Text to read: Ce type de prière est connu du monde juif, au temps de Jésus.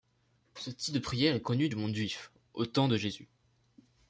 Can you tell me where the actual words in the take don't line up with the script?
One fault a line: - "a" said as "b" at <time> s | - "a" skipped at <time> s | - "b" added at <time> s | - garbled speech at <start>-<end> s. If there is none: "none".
none